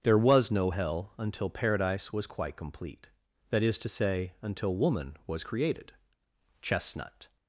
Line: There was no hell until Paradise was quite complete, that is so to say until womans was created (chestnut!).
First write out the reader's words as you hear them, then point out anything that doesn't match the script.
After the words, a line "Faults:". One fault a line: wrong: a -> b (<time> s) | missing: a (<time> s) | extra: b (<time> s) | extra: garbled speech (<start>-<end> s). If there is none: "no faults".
There was no hell until Paradise was quite complete, that is to say until woman was created (chestnut!).
Faults:
missing: so (3.8 s)
wrong: womans -> woman (4.8 s)